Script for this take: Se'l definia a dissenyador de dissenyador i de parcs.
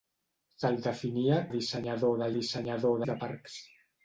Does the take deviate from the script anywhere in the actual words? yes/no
no